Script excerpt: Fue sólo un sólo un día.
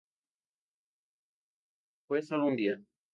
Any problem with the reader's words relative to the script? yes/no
yes